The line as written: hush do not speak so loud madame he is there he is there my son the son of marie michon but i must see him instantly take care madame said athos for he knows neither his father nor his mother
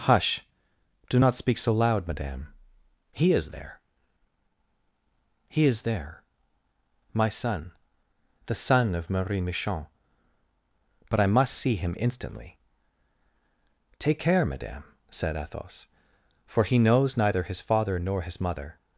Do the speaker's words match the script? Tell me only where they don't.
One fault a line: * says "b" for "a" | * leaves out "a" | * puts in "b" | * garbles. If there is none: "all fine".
all fine